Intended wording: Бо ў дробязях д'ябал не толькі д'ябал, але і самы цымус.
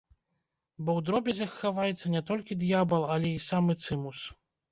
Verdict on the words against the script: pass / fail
fail